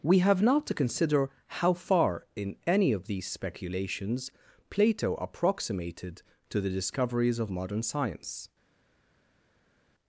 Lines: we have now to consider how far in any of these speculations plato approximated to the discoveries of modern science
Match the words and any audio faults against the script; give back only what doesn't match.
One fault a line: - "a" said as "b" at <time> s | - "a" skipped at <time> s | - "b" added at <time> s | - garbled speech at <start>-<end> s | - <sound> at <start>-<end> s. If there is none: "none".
none